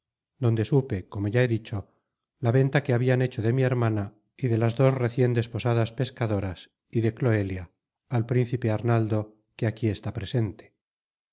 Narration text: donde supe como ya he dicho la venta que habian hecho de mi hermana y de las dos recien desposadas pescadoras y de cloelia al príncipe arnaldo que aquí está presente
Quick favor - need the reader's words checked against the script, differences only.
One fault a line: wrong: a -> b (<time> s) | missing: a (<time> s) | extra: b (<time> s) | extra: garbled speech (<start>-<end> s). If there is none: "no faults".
no faults